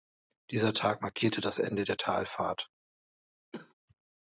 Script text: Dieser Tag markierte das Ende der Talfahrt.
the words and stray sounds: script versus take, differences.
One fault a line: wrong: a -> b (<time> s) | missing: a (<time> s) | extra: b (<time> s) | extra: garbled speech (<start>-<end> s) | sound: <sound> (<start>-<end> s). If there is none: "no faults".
sound: cough (3.5-3.7 s)